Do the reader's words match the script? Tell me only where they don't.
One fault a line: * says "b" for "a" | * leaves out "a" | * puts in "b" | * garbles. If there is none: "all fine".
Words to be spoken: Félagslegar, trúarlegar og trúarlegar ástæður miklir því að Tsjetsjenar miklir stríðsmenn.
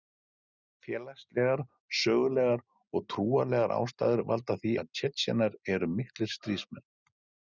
* says "sögulegar" for "trúarlegar"
* says "valda" for "miklir"
* puts in "eru"